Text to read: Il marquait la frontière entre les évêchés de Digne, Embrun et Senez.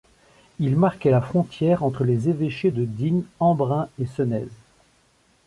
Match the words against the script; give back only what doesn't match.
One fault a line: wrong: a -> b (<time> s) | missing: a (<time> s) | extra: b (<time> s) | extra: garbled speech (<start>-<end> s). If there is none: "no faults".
no faults